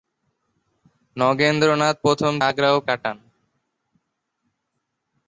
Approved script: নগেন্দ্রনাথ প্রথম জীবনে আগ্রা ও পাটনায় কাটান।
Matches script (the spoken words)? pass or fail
fail